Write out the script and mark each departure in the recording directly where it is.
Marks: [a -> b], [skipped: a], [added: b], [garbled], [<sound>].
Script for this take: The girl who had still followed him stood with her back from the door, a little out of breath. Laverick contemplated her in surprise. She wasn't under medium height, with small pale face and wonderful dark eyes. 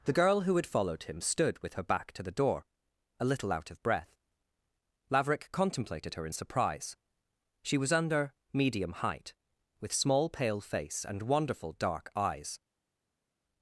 The girl who had [skipped: still] followed him stood with her back [from -> to] the door, a little out of breath. Laverick contemplated her in surprise. She [wasn't -> was] under medium height, with small pale face and wonderful dark eyes.